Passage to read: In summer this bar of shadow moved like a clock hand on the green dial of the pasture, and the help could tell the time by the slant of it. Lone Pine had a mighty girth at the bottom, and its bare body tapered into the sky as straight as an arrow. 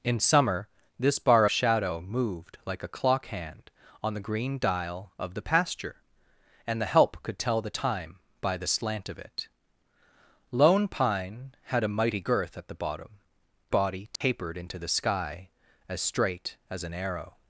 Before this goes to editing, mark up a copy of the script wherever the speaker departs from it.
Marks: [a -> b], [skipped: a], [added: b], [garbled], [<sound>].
In summer this bar [skipped: of] shadow moved like a clock hand on the green dial of the pasture, and the help could tell the time by the slant of it. Lone Pine had a mighty girth at the bottom, [skipped: and its bare] body tapered [dropout] into the sky as straight as an arrow.